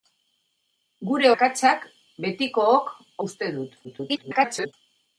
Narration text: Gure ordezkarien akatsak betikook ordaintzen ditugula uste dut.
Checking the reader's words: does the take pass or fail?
fail